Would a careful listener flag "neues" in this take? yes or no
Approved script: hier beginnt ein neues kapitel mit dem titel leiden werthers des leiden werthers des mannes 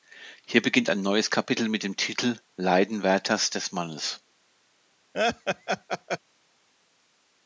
no